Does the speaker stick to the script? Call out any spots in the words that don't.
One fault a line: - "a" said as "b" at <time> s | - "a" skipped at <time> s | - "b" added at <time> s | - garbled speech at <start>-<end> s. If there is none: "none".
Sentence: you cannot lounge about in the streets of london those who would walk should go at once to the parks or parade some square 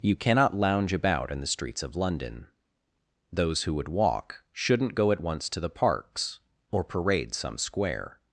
- "should" said as "shouldn't" at 4.5 s